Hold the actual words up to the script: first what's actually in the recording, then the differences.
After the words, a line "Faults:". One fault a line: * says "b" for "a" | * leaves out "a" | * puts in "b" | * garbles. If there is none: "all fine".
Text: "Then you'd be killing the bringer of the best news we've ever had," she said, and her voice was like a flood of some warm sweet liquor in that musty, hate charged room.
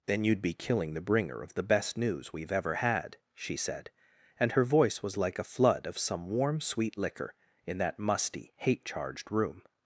"Then you'd be killing the bringer of the best news we've ever had," she said, and her voice was like a flood of some warm sweet liquor in that musty, hate charged room.
Faults:
all fine